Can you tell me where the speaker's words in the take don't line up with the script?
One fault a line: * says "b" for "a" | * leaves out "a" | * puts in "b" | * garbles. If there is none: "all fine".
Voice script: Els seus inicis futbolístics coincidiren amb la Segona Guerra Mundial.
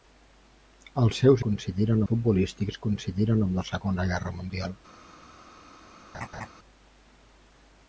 * says "coincidiren" for "inicis"